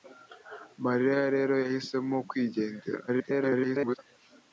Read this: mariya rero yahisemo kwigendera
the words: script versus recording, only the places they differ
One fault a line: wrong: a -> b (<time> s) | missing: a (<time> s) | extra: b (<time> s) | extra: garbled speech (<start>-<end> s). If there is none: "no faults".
extra: garbled speech (3.1-4.0 s)